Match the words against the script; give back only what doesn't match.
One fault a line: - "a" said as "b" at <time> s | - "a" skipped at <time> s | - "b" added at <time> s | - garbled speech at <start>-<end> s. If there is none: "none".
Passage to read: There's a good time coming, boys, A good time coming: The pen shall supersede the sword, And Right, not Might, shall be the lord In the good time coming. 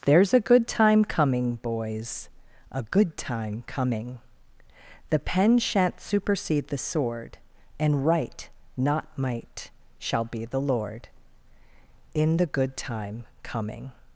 - "shall" said as "shan't" at 5.6 s